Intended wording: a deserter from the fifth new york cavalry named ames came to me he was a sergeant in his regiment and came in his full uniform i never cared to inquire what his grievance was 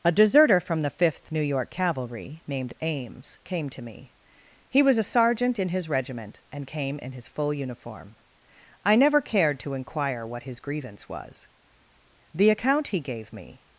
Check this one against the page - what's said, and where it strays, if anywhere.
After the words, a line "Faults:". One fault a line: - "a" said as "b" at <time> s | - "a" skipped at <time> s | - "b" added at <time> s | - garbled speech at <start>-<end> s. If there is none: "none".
a deserter from the fifth new york cavalry named ames came to me he was a sergeant in his regiment and came in his full uniform i never cared to inquire what his grievance was the account he gave me
Faults:
- "the account he gave me" added at 12.3 s